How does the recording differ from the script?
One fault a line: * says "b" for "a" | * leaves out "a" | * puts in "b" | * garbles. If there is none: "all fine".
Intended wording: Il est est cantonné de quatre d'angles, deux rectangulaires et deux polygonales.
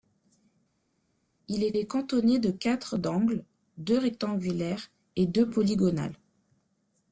all fine